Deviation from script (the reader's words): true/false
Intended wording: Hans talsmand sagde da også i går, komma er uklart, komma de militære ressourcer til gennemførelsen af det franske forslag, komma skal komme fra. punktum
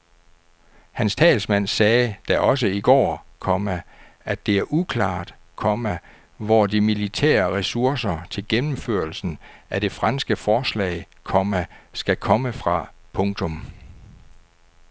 true